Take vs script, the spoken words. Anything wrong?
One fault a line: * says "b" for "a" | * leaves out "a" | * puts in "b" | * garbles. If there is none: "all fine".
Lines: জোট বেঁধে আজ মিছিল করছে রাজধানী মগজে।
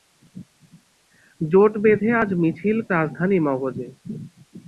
* leaves out "করছে"